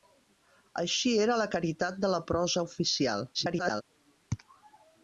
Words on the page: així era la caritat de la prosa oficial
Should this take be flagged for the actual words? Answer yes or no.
yes